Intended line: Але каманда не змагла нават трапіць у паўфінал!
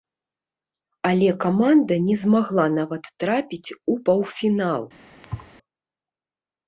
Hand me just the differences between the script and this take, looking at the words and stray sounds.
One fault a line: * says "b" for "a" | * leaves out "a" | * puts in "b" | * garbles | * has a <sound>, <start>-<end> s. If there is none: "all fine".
* has a thud, 5.2-5.5 s